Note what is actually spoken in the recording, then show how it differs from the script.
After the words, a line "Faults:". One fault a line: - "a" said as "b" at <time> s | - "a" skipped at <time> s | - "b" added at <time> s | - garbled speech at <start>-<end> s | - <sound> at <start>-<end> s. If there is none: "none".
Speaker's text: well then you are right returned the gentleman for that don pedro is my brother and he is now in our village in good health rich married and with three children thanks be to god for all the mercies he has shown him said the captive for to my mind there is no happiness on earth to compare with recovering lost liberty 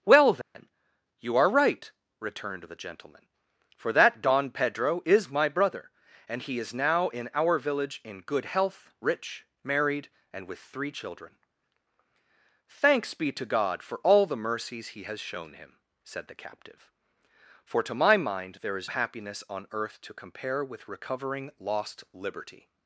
well then you are right returned the gentleman for that don pedro is my brother and he is now in our village in good health rich married and with three children thanks be to god for all the mercies he has shown him said the captive for to my mind there is happiness on earth to compare with recovering lost liberty
Faults:
- dropout at 0.4-0.5 s
- "no" skipped at 18.9 s